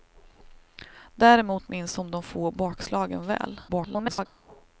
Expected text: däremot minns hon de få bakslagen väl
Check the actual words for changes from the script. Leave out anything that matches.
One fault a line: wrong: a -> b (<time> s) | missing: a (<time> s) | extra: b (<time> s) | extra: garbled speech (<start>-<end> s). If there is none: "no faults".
extra: garbled speech (3.7-4.3 s)